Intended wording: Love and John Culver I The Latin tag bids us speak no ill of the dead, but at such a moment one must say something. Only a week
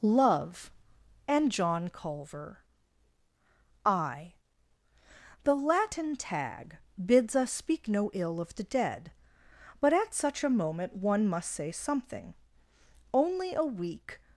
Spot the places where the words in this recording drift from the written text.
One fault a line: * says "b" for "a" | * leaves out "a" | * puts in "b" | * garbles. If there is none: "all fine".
all fine